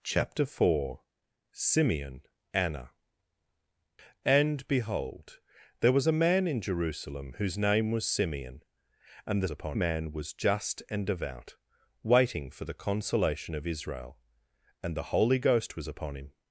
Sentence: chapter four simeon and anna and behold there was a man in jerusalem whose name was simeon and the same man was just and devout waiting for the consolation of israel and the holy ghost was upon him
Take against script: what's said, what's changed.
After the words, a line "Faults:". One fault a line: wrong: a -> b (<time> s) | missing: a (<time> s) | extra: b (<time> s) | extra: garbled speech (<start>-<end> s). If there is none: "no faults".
chapter four simeon anna and behold there was a man in jerusalem whose name was simeon and the upon man was just and devout waiting for the consolation of israel and the holy ghost was upon him
Faults:
missing: and (2.2 s)
wrong: same -> upon (9.5 s)